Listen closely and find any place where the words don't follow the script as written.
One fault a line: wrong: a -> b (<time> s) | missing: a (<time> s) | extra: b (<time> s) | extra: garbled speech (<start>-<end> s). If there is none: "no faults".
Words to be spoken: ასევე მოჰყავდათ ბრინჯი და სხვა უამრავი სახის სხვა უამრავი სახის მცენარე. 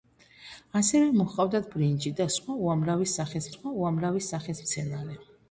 no faults